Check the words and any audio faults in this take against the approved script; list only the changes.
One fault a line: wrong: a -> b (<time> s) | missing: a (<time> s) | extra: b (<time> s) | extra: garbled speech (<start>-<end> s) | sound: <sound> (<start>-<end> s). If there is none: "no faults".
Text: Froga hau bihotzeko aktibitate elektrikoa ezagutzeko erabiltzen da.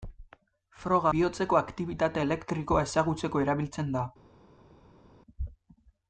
missing: hau (1.1 s)